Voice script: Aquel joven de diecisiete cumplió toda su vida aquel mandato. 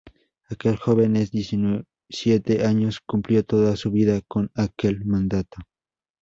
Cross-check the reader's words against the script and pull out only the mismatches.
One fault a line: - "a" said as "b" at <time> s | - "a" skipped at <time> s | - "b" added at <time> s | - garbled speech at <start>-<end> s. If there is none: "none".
- "años" added at 2.6 s
- "con" added at 4.3 s